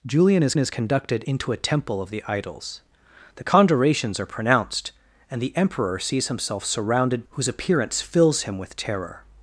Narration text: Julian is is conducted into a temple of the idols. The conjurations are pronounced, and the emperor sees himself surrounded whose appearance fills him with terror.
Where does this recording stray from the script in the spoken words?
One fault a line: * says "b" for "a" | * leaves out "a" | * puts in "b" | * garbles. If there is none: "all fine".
all fine